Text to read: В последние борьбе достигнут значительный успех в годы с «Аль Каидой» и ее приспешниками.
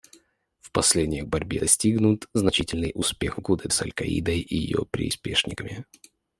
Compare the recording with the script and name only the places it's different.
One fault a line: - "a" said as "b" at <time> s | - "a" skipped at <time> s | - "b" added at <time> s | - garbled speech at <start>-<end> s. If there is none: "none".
none